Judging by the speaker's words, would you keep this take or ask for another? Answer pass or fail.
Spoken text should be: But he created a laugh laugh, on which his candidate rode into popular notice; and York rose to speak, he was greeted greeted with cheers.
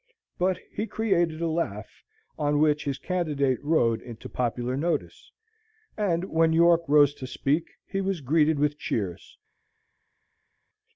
fail